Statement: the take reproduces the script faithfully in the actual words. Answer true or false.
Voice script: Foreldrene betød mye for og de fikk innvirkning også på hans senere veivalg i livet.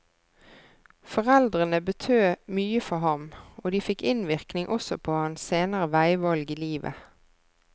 false